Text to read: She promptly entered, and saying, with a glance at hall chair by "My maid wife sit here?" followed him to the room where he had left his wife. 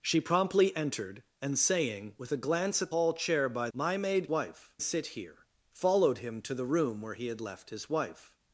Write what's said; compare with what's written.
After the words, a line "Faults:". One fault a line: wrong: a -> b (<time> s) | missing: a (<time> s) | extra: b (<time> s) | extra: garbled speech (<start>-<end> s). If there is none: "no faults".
She promptly entered, and saying, with a glance at hall chair by "My maid wife sit here?" followed him to the room where he had left his wife.
Faults:
no faults